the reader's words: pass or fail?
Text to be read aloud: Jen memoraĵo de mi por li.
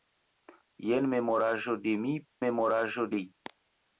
fail